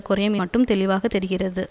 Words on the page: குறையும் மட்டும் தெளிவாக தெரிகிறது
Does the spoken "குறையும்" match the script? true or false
true